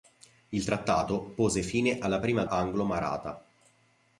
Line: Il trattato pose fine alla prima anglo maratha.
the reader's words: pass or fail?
pass